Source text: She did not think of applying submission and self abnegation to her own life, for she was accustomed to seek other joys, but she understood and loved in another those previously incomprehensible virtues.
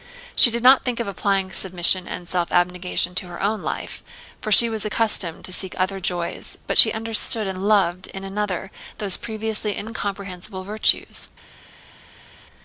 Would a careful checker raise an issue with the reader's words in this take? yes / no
no